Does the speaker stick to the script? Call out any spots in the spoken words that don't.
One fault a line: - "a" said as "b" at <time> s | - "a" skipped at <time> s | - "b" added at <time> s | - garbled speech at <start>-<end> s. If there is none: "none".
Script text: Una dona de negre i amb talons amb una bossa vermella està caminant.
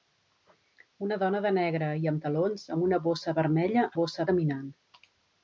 - "està" said as "bossa" at 4.0 s